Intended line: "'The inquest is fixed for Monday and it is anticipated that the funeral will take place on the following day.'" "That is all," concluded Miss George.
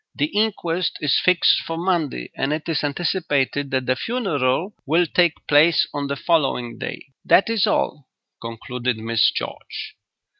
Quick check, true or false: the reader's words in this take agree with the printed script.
true